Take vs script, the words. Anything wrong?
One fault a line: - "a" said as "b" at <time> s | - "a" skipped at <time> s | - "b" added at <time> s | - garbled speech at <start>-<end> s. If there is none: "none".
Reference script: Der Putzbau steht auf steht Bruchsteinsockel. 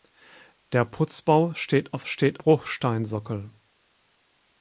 none